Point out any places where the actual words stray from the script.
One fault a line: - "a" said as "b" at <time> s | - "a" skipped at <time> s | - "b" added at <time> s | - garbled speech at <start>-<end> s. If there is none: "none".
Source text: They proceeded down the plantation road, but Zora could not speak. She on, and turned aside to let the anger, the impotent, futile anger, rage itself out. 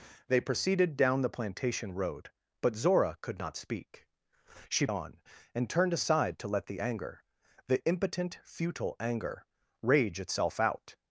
none